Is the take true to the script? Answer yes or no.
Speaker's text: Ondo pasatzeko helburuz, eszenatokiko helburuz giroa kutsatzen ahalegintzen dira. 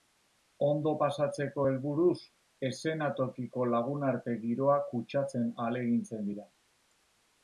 no